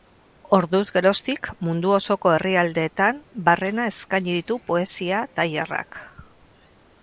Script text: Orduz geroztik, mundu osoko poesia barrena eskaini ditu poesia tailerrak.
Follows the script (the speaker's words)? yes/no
no